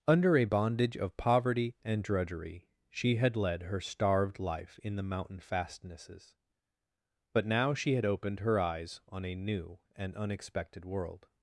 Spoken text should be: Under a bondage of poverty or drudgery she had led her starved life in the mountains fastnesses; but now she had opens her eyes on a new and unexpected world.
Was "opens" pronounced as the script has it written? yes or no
no